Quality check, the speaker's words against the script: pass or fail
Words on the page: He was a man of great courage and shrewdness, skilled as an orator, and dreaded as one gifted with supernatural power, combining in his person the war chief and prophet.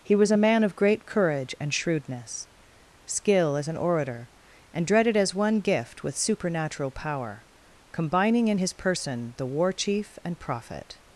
fail